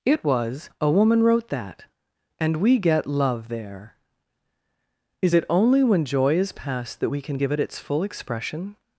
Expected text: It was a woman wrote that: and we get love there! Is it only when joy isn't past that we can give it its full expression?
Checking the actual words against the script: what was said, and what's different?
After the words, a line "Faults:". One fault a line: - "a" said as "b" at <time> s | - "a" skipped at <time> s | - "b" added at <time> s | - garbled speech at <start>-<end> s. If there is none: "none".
It was a woman wrote that: and we get love there! Is it only when joy is past that we can give it its full expression?
Faults:
- "isn't" said as "is" at 6.4 s